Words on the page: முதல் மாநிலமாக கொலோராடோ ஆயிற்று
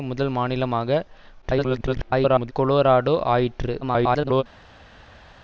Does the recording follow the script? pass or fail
fail